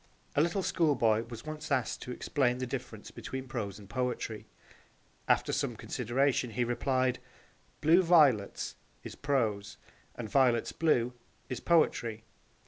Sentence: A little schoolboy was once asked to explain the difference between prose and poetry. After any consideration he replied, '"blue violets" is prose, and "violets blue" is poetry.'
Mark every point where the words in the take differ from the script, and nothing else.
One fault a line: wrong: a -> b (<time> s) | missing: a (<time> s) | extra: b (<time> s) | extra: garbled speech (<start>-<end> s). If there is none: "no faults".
wrong: any -> some (5.5 s)